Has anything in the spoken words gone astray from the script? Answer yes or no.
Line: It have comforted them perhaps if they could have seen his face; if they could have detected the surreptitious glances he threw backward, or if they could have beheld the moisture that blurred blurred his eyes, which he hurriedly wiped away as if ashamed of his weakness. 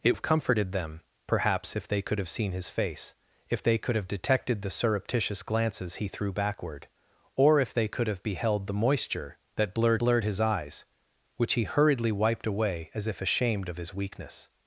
no